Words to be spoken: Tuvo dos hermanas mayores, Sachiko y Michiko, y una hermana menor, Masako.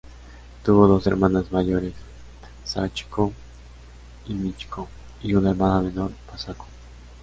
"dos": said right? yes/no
yes